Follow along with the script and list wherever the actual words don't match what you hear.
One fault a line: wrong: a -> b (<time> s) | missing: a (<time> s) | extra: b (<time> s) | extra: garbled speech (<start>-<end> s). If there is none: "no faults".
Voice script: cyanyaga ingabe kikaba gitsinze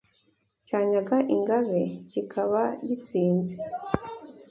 no faults